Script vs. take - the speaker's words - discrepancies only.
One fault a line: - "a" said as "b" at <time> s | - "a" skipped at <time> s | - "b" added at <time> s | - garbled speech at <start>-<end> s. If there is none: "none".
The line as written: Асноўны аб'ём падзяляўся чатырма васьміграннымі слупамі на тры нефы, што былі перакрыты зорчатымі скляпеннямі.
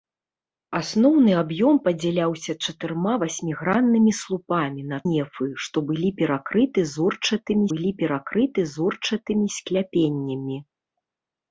- "тры" skipped at 5.0 s
- "былі перакрыты зорчатымі" added at 7.7 s